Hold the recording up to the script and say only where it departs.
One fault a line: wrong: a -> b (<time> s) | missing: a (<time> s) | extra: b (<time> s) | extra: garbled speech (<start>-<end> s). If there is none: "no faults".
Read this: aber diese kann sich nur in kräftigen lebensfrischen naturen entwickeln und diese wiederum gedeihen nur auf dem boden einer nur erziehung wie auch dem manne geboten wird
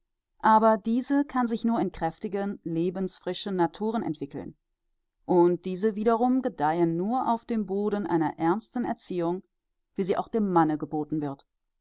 wrong: nur -> ernsten (8.4 s)
extra: sie (10.0 s)